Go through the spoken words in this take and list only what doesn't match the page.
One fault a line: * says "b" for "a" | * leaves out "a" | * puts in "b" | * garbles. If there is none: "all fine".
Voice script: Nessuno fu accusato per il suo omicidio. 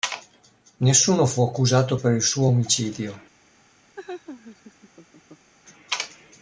all fine